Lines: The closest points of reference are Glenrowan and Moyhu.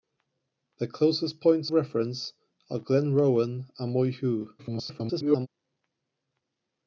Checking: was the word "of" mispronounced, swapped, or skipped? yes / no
yes